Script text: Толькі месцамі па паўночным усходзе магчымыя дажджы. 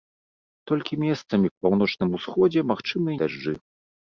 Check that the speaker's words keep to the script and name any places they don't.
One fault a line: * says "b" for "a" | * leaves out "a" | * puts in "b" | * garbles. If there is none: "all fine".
all fine